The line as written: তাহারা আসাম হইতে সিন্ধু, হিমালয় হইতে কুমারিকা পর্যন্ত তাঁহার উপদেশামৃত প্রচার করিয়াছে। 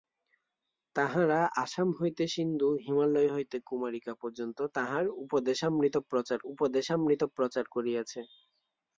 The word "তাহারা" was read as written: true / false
true